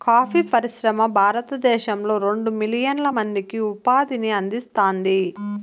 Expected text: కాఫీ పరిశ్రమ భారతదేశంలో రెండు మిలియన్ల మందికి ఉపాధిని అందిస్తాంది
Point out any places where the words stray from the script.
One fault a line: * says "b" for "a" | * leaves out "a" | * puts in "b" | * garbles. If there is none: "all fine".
all fine